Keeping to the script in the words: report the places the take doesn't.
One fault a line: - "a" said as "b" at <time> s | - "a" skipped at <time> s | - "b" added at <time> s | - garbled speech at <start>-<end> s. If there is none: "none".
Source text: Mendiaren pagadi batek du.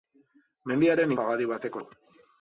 none